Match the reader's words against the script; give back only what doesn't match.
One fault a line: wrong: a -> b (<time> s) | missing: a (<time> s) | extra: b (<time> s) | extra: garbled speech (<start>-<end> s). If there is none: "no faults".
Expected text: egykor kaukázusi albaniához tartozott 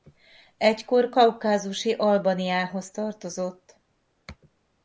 no faults